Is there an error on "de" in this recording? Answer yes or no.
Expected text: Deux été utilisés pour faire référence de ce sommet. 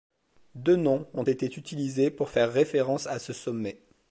yes